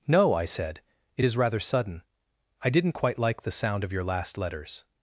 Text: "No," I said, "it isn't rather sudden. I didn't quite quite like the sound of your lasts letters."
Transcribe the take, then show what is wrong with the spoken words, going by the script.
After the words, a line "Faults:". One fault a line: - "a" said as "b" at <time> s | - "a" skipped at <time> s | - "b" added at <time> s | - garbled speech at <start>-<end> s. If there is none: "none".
"No," I said, "it is rather sudden. I didn't quite like the sound of your last letters."
Faults:
- "isn't" said as "is" at 1.2 s
- "quite" skipped at 3.2 s
- "lasts" said as "last" at 4.0 s